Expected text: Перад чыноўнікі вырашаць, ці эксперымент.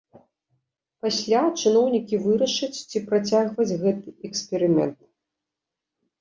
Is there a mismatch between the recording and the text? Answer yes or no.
yes